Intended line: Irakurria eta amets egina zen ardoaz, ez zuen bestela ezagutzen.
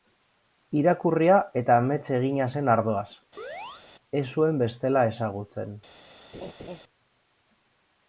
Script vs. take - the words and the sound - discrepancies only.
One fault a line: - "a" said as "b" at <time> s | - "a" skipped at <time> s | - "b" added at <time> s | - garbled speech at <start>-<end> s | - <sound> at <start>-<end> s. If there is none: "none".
- chirp at 3.4-3.8 s
- laugh at 6.3-6.8 s